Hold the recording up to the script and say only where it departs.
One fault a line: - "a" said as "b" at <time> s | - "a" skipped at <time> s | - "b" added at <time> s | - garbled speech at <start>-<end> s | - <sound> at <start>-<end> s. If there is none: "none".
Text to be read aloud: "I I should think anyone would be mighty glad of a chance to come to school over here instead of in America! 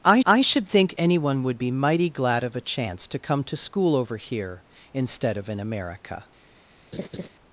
- laugh at 6.9-7.3 s